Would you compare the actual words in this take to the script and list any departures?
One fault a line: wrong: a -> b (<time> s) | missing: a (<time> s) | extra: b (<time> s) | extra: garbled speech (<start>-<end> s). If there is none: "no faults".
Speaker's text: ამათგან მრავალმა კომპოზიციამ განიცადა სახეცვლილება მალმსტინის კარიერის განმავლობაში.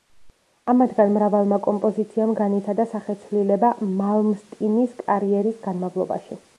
no faults